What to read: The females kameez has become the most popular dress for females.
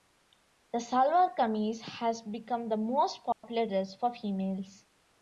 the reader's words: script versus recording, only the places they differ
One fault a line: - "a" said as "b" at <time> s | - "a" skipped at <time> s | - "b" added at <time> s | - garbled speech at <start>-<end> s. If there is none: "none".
- "females" said as "salwar" at 0.8 s